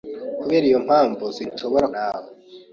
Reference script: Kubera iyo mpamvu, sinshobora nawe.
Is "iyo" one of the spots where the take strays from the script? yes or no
no